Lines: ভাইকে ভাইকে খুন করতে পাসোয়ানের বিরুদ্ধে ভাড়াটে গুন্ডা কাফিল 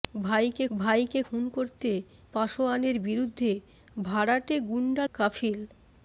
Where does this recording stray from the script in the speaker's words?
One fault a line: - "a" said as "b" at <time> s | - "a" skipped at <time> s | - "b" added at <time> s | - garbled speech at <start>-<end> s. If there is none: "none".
none